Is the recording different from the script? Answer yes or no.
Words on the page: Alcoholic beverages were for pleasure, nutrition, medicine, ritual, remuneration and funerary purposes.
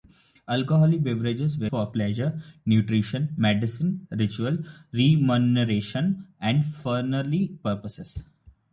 no